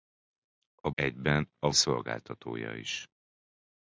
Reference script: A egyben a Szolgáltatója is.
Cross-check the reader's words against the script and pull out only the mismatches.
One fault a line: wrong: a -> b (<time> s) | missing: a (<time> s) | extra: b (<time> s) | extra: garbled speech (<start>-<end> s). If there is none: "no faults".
no faults